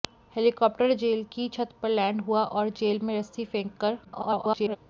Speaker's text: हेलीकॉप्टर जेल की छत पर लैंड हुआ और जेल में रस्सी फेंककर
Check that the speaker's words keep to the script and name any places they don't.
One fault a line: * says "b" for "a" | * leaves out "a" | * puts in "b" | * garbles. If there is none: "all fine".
* garbles